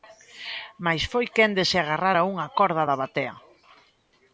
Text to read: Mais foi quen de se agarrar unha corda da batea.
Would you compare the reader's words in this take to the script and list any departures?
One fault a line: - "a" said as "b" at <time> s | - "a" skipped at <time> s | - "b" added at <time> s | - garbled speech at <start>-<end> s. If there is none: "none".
- "a" added at 2.2 s